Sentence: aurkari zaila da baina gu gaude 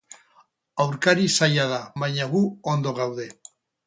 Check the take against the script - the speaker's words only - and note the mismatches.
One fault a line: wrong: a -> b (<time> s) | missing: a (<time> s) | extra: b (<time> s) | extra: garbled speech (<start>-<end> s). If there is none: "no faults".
extra: ondo (2.7 s)